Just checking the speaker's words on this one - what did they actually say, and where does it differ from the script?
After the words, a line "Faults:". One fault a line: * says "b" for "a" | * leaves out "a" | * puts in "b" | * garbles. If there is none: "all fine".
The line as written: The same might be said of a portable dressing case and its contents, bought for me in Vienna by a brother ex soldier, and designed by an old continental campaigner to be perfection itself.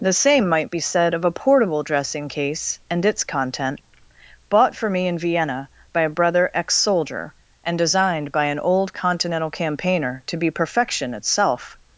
The same might be said of a portable dressing case and its content, bought for me in Vienna by a brother ex soldier, and designed by an old continental campaigner to be perfection itself.
Faults:
* says "content" for "contents"